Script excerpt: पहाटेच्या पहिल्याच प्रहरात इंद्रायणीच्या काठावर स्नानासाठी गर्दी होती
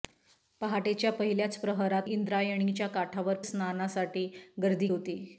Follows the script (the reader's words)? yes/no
yes